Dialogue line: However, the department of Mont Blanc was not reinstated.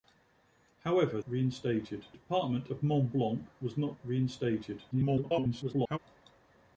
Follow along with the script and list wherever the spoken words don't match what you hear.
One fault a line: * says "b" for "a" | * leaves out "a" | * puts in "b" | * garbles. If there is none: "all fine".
* says "reinstated" for "the"
* garbles